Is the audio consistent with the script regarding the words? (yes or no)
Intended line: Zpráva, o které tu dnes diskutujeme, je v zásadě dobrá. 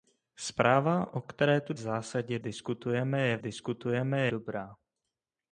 no